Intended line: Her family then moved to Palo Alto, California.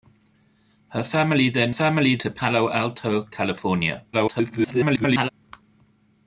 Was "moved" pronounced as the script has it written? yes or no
no